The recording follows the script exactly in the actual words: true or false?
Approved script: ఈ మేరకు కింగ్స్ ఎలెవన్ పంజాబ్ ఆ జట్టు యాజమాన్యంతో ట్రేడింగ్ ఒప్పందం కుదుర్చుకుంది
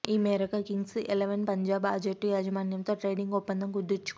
true